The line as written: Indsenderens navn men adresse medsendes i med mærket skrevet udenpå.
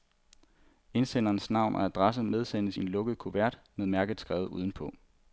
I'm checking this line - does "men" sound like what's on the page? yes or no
no